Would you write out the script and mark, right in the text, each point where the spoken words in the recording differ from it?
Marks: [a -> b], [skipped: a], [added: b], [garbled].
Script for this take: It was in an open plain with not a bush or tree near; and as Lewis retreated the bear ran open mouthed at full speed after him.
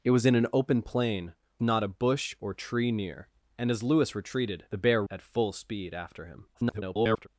It was in an open plain [skipped: with] not a bush or tree near; and as Lewis retreated the bear [skipped: ran open mouthed] at full speed after him. [garbled]